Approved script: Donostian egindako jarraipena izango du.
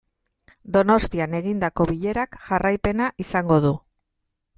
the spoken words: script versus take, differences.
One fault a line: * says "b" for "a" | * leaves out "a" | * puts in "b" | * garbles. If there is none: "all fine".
* puts in "bilerak"